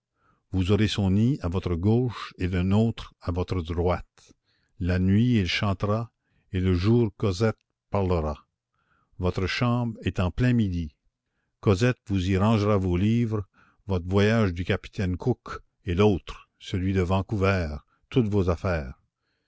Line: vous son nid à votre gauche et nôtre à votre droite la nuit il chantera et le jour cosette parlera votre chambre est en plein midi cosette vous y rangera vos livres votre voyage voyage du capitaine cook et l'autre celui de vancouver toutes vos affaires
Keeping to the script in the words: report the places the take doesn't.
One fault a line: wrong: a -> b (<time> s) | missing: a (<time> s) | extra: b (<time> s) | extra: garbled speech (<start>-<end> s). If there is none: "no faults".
extra: aurez (0.7 s)
extra: le (2.5 s)
missing: voyage (14.6 s)